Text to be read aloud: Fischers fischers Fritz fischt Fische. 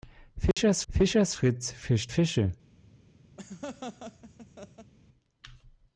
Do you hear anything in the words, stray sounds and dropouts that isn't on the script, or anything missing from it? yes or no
yes